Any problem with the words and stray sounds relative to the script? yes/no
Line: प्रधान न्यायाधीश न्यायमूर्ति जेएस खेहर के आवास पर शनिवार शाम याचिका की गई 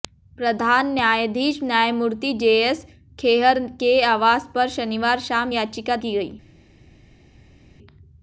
no